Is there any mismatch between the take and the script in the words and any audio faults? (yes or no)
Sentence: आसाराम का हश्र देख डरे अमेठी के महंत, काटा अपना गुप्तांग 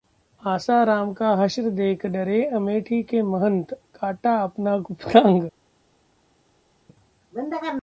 no